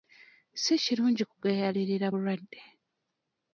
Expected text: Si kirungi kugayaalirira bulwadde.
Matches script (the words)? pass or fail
pass